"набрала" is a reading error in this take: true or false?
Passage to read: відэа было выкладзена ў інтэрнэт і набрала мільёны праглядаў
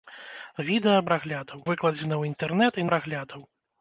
true